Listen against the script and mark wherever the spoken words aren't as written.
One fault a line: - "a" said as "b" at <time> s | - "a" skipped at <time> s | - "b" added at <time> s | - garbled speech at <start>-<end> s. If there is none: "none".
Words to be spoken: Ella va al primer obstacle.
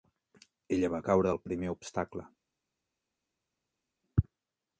- "caure" added at 1.1 s